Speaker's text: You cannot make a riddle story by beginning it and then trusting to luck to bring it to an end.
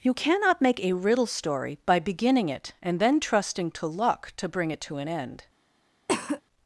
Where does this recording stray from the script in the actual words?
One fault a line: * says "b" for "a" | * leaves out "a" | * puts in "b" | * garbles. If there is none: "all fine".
all fine